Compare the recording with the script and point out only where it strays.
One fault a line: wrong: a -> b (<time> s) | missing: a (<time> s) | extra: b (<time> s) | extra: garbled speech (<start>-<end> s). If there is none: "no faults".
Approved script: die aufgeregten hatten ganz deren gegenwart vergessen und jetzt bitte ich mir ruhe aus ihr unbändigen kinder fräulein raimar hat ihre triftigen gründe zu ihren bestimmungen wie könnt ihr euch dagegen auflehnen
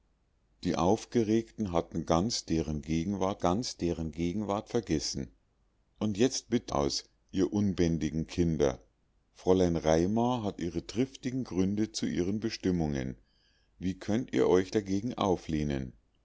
extra: ganz deren gegenwart (3.4 s)
missing: ich mir ruhe (6.7 s)